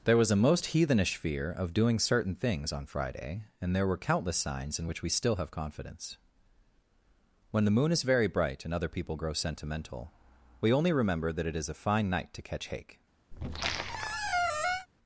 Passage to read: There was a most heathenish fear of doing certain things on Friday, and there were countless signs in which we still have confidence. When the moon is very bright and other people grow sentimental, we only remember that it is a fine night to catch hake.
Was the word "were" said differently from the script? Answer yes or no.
no